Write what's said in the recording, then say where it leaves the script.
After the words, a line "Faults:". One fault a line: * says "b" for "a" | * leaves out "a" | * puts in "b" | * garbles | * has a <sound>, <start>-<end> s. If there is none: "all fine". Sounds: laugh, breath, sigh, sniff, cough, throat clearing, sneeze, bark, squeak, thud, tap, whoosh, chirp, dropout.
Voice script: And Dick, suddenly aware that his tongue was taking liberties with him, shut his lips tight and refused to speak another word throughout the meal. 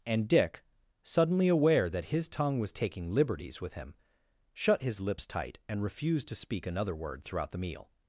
And Dick, suddenly aware that his tongue was taking liberties with him, shut his lips tight and refused to speak another word throughout the meal.
Faults:
all fine